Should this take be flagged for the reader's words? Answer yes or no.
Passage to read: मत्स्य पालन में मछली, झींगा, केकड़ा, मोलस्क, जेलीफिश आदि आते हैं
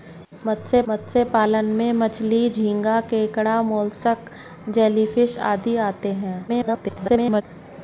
yes